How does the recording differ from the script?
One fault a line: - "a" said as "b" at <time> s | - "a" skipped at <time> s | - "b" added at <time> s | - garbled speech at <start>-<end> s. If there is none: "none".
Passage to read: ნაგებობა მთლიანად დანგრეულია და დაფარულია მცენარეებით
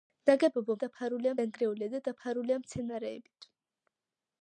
- "მთლიანად" said as "დაფარულია" at 0.8 s